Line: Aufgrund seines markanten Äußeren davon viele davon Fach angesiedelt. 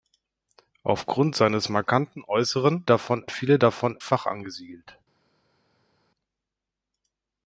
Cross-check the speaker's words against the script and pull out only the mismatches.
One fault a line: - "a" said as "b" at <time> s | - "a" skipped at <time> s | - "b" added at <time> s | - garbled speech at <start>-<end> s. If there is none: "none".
none